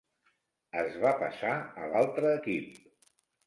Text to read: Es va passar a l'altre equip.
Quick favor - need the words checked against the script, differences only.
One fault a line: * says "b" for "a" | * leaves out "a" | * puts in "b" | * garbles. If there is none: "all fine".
all fine